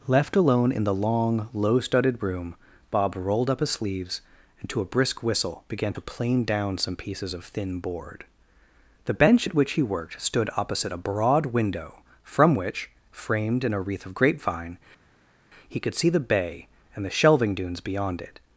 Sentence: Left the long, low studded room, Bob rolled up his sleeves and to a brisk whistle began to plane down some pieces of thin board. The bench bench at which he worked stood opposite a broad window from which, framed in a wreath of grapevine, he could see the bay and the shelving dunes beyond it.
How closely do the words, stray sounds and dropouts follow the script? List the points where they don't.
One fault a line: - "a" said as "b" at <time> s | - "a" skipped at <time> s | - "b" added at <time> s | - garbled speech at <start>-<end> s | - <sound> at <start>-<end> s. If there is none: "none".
- "alone in" added at 0.3 s
- "bench" skipped at 9.5 s